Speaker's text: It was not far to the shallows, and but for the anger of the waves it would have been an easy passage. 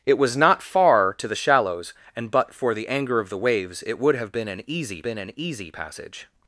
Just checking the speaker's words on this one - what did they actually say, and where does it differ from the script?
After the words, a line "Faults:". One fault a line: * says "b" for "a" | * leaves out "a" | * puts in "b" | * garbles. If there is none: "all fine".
It was not far to the shallows, and but for the anger of the waves it would have been an easy been an easy passage.
Faults:
* puts in "been an easy"